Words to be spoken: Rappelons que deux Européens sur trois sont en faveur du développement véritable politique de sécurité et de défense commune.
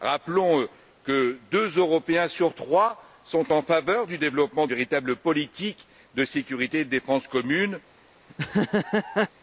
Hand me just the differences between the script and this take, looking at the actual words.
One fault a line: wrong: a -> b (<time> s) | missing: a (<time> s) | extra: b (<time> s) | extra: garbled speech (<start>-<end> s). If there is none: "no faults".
no faults